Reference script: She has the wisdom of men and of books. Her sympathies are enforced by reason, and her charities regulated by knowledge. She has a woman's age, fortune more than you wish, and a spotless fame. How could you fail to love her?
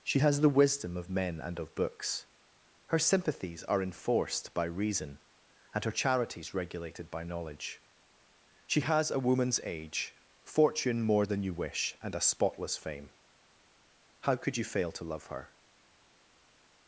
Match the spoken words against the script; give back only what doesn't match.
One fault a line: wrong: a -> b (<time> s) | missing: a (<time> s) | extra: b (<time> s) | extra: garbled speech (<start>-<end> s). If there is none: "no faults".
no faults